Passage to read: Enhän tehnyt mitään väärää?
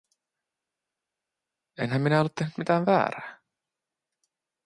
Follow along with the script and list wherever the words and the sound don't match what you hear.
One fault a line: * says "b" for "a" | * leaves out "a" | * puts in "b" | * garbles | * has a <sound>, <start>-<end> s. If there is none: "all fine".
* puts in "minä ollut"